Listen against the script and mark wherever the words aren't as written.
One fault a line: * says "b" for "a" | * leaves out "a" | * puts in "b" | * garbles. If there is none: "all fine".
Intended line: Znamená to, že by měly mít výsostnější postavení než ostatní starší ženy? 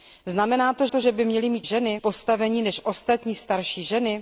* puts in "to"
* says "ženy" for "výsostnější"